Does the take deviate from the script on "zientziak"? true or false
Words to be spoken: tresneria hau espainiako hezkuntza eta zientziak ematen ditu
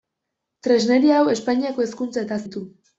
true